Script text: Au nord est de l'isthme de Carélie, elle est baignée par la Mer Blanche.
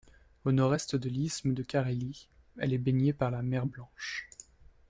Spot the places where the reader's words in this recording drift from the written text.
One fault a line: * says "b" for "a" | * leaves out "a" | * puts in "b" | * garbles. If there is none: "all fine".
all fine